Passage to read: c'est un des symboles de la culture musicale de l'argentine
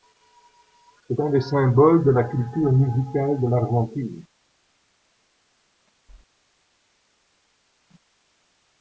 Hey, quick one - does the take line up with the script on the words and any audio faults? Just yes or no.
yes